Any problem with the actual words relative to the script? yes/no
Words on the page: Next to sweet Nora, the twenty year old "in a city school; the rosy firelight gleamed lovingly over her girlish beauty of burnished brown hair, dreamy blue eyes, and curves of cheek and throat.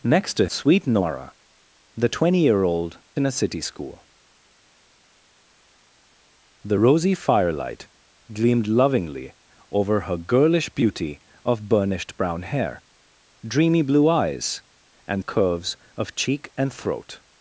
no